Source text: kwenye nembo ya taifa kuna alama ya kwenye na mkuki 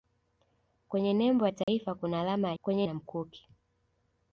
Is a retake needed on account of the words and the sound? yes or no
yes